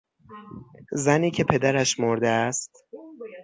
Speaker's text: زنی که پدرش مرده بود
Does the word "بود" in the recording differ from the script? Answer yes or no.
yes